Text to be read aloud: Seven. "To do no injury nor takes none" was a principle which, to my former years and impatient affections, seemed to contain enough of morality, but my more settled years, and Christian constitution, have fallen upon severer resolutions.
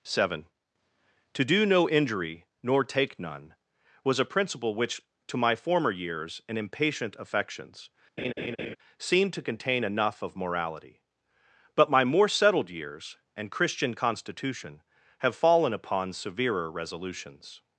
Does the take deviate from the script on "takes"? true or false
true